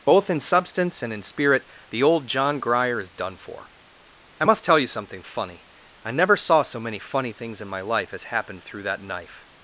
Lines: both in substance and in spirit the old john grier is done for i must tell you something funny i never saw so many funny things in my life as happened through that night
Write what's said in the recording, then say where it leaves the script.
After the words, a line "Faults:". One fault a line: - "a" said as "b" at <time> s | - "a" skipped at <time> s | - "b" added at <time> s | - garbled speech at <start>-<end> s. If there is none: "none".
both in substance and in spirit the old john grier is done for i must tell you something funny i never saw so many funny things in my life as happened through that knife
Faults:
- "night" said as "knife" at 9.0 s